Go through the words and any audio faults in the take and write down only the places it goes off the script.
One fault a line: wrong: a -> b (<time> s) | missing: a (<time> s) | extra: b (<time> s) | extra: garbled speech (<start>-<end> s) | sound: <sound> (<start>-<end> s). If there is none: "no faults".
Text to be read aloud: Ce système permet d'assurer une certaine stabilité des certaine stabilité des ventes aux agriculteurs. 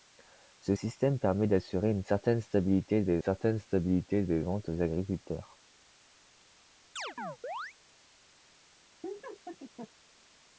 sound: chirp (7.0-7.7 s)
sound: laugh (9.0-9.9 s)